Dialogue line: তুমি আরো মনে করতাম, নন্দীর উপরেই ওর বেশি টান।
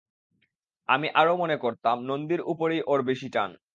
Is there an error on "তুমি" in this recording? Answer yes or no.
yes